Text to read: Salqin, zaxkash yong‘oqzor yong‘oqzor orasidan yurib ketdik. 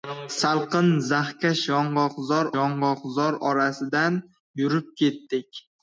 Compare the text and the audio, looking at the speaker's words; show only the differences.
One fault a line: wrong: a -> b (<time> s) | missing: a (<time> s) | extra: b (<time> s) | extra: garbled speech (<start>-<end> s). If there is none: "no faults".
no faults